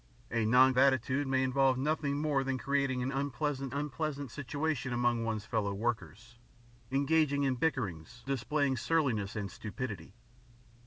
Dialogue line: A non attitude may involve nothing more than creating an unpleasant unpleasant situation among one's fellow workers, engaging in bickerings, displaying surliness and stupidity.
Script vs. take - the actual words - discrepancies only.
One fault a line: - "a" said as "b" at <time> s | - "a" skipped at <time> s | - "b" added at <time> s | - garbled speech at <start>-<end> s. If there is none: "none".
none